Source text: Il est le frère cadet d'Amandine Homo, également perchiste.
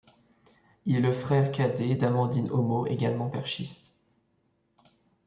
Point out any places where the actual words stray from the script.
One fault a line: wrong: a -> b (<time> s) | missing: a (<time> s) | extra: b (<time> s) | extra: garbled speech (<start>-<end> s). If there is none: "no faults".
no faults